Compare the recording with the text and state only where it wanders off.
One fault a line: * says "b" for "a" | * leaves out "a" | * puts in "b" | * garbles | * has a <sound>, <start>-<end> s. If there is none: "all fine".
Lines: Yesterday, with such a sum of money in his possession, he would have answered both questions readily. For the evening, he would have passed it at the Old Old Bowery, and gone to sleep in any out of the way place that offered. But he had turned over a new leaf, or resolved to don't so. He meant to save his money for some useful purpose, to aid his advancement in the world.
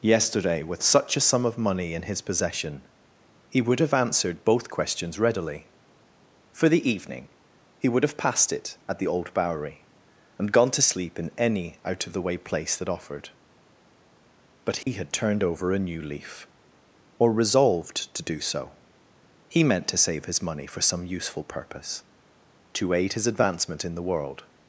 * leaves out "Old"
* has a dropout, 14.8-14.9 s
* says "do" for "don't"